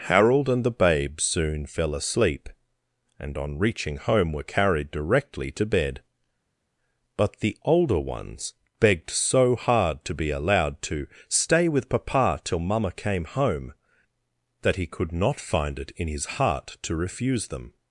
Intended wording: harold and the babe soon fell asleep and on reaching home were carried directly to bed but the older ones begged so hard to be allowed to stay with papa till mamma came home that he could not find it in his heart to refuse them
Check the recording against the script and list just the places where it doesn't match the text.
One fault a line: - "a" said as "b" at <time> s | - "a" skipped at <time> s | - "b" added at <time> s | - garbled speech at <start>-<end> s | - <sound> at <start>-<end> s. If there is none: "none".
none